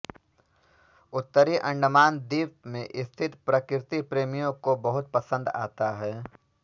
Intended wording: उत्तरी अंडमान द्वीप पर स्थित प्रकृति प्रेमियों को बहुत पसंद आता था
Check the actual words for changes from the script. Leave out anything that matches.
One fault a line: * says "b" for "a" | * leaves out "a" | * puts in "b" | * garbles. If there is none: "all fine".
* says "में" for "पर"
* says "है" for "था"